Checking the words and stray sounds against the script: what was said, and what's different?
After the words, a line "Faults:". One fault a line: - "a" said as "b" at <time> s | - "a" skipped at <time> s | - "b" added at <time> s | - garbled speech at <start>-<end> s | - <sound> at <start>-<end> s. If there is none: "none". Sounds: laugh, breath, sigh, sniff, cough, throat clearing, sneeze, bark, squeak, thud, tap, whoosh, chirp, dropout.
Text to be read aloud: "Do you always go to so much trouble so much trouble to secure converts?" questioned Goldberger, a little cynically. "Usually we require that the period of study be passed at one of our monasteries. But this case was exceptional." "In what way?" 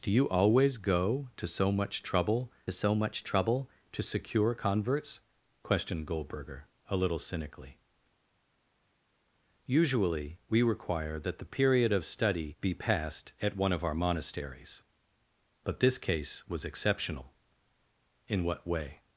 "Do you always go to so much trouble so much trouble to secure converts?" questioned Goldberger, a little cynically. "Usually we require that the period of study be passed at one of our monasteries. But this case was exceptional." "In what way?"
Faults:
none